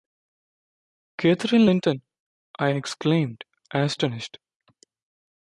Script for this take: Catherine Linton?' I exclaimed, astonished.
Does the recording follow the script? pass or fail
pass